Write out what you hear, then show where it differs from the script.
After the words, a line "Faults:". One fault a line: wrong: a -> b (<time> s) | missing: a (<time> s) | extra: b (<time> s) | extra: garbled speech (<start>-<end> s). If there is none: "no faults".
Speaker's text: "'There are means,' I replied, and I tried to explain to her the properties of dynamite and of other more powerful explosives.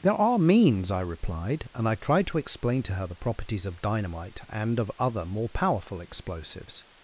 "'There are means,' I replied, and I tried to explain to her the properties of dynamite and of other more powerful explosives.
Faults:
no faults